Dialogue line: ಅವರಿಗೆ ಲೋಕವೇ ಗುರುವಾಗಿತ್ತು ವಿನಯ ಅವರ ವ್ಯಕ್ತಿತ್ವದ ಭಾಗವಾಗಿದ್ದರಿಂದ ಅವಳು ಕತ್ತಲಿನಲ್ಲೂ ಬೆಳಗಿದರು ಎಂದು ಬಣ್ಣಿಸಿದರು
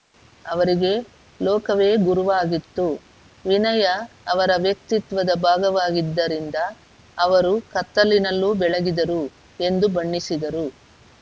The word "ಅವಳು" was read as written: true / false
false